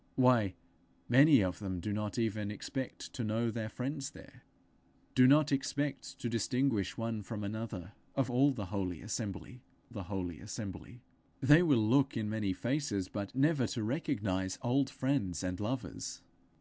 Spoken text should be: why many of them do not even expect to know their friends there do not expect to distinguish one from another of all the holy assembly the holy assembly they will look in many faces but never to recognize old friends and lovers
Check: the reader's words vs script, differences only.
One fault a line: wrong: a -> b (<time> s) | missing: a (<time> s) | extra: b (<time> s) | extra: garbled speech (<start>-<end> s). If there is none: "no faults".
no faults